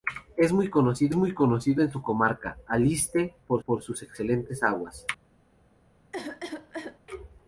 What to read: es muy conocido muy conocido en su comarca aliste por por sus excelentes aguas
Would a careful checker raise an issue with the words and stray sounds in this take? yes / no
yes